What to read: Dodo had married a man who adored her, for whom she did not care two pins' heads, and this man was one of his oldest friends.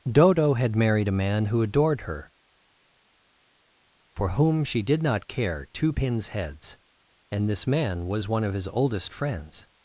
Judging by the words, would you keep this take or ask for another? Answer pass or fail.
pass